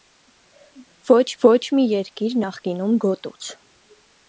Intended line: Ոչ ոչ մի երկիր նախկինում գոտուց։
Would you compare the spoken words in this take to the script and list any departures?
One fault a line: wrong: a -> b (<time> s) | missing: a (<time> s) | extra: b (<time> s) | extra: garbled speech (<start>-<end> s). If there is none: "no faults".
no faults